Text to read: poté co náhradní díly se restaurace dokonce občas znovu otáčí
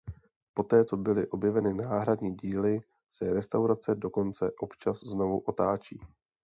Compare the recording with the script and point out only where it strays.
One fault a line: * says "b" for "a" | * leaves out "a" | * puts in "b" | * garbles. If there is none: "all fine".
* puts in "byly objeveny"